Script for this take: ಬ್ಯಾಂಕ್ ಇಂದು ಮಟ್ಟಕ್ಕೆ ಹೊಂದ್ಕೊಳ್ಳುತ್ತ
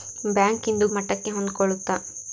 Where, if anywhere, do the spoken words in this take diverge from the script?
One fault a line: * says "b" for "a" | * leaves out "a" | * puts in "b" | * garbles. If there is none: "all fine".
all fine